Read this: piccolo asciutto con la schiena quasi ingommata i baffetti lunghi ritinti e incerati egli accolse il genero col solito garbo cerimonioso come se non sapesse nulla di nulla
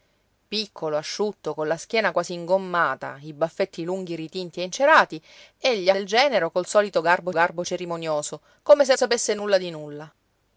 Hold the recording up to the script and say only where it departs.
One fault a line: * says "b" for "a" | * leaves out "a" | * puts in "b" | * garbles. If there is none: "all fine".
* leaves out "accolse"
* puts in "garbo"
* leaves out "non"